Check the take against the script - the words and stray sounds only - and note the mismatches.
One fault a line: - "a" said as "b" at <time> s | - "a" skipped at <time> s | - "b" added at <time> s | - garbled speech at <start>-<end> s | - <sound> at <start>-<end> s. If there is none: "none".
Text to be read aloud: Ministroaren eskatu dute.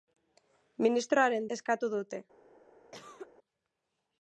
- cough at 2.9-3.3 s